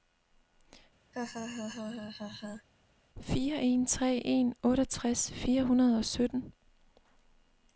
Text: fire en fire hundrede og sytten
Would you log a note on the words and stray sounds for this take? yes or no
yes